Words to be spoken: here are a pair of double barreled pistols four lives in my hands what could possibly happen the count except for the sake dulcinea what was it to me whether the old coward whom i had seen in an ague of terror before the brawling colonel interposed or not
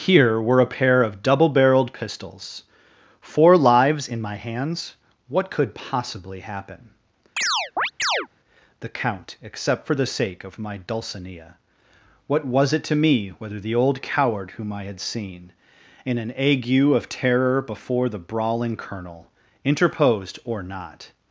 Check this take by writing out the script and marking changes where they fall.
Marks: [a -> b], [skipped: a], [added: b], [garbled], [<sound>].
here [are -> were] a pair of double barreled pistols four lives in my hands what could possibly happen [chirp] the count except for the sake [added: of my] dulcinea what was it to me whether the old coward whom i had seen in an ague of terror before the brawling colonel interposed or not